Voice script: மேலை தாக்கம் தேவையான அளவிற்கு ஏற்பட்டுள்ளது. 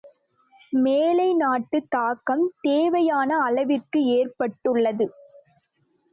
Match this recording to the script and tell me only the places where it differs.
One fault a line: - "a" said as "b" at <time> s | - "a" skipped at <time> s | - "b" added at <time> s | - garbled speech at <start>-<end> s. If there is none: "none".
- "நாட்டுத்" added at 1.4 s